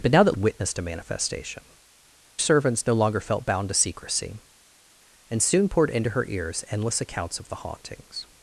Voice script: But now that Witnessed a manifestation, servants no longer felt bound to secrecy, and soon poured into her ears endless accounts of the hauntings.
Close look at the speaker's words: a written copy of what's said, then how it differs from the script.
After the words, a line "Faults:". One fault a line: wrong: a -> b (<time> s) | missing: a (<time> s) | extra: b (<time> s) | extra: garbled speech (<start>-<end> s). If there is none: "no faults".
But now that Witnessed a manifestation, servants no longer felt bound to secrecy, and soon poured into her ears endless accounts of the hauntings.
Faults:
no faults